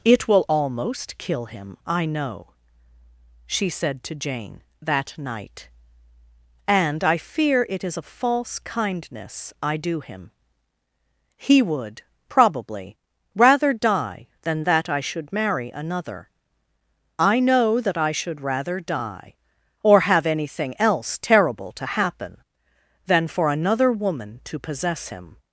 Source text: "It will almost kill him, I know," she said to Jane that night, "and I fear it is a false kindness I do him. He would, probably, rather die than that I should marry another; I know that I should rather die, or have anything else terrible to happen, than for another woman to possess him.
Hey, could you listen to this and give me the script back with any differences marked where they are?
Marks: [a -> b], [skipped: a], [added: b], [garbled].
"It will almost kill him, I know," she said to Jane that night, "and I fear it is a false kindness I do him. He would, probably, rather die than that I should marry another; I know that I should rather die, or have anything else terrible to happen, than for another woman to possess him.